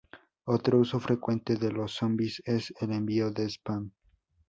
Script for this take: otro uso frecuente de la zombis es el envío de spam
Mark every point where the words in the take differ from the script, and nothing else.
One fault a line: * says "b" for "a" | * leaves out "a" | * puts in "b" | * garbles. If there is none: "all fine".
* says "los" for "la"